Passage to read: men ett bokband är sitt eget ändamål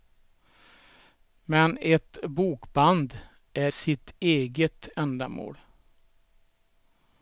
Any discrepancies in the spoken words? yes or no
no